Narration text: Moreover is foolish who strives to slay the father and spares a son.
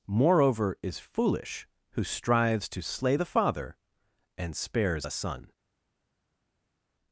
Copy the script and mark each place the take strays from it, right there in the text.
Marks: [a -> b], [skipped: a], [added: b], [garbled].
Moreover is foolish who strives to slay the father and spares a son.